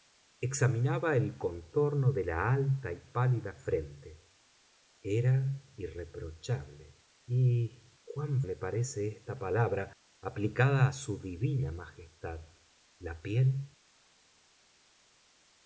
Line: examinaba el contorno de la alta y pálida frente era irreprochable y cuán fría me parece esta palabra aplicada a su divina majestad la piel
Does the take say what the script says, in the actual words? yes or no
no